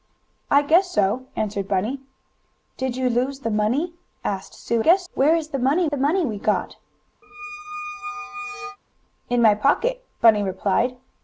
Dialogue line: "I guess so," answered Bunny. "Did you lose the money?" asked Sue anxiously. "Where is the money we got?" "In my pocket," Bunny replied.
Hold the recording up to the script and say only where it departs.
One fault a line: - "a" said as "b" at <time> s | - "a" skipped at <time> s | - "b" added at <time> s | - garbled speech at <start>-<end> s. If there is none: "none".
- "anxiously" said as "guess" at 4.8 s
- "the money" added at 5.9 s